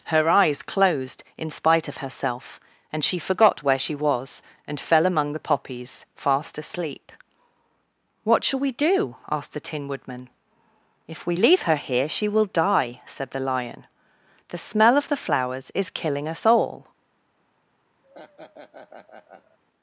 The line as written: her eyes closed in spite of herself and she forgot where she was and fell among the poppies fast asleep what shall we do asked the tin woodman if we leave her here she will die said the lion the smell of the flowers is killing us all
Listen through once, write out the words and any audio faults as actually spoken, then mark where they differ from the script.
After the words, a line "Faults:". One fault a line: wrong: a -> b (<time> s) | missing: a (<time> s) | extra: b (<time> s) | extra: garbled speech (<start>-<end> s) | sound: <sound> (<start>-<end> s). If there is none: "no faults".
her eyes closed in spite of herself and she forgot where she was and fell among the poppies fast asleep what shall we do asked the tin woodman if we leave her here she will die said the lion the smell of the flowers is killing us all
Faults:
sound: laugh (18.0-19.6 s)